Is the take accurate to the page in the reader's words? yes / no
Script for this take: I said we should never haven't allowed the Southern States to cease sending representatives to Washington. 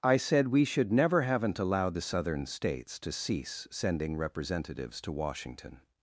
yes